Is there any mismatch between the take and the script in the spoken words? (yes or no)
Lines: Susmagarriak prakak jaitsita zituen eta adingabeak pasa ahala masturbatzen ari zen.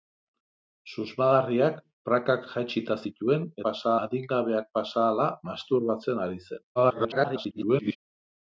yes